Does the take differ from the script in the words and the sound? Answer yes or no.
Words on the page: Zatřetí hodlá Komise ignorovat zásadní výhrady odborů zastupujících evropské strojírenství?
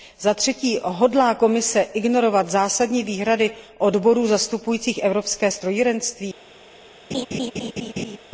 yes